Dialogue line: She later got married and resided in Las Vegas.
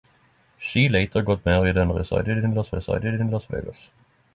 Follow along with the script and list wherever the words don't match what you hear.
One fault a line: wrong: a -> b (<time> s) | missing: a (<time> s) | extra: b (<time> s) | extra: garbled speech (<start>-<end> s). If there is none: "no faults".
extra: resided in Las (2.7 s)